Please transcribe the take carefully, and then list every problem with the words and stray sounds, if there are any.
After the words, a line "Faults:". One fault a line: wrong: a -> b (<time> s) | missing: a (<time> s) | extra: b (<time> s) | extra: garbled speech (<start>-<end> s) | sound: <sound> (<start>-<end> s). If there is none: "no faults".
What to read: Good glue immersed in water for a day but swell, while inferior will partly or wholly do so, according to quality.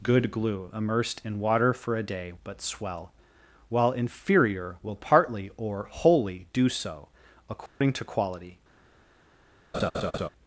Good glue immersed in water for a day but swell, while inferior will partly or wholly do so, according to quality.
Faults:
sound: dropout (7.7-7.8 s)
sound: laugh (9.7-10.3 s)